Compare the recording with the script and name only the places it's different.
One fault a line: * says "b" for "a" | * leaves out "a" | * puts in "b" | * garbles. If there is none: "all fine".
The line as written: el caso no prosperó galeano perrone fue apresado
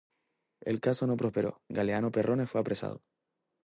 all fine